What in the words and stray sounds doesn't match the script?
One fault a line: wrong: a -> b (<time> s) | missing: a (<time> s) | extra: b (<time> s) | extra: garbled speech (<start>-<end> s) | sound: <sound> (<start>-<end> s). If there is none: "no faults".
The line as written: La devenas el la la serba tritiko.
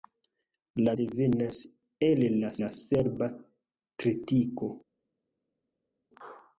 no faults